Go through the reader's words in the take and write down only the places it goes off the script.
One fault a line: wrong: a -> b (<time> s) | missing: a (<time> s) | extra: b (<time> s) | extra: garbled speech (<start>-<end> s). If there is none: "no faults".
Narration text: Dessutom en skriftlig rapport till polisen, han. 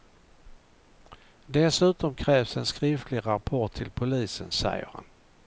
extra: krävs (2.1 s)
extra: säger (4.5 s)